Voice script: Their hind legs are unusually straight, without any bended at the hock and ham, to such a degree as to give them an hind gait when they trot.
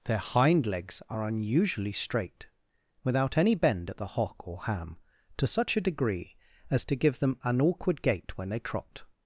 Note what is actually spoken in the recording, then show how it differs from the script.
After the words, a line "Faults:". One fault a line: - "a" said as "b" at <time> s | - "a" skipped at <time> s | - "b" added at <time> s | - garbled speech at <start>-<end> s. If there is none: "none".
Their hind legs are unusually straight, without any bend at the hock or ham, to such a degree as to give them an awkward gait when they trot.
Faults:
- "bended" said as "bend" at 3.5 s
- "and" said as "or" at 4.5 s
- "hind" said as "awkward" at 7.6 s